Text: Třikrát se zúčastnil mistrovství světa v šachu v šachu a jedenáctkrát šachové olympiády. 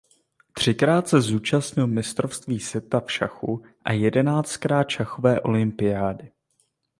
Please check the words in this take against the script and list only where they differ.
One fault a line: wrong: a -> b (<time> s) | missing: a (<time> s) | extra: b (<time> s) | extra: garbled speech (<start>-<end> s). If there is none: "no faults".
missing: v šachu (3.6 s)